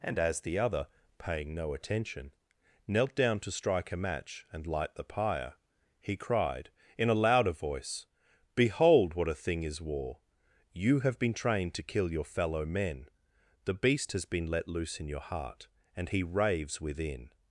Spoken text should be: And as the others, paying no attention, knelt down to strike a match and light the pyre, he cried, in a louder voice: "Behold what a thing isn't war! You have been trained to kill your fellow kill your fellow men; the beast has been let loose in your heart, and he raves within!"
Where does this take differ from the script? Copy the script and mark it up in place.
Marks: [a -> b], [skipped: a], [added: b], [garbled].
And as the [others, -> other] paying no attention, knelt down to strike a match and light the pyre, he cried, in a louder voice: "Behold what a thing [isn't -> is] war! You have been trained to kill your fellow [skipped: kill your fellow] men; the beast has been let loose in your heart, and he raves within!"